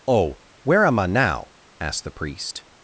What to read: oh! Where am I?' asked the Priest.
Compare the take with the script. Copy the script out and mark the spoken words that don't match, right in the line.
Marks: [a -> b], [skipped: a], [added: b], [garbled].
oh! Where am I?' [added: now] asked the Priest.